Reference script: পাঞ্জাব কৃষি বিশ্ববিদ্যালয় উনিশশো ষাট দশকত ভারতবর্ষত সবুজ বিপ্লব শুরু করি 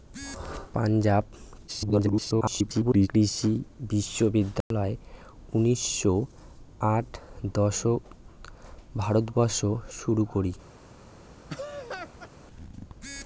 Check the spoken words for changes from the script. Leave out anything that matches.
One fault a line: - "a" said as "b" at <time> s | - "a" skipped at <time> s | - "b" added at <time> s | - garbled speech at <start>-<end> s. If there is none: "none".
- garbled speech at 1.7-3.1 s
- "সবুজ বিপ্লব" skipped at 9.7 s